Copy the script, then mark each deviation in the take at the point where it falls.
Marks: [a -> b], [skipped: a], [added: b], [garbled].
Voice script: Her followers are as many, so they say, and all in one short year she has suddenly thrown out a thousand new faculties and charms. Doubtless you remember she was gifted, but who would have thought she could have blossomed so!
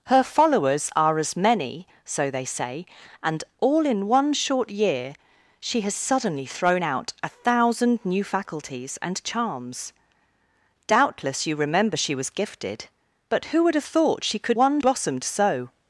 Her followers are as many, so they say, and all in one short year she has suddenly thrown out a thousand new faculties and charms. Doubtless you remember she was gifted, but who would have thought she could [have -> one] blossomed so!